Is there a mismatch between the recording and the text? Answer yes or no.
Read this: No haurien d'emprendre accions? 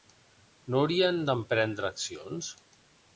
no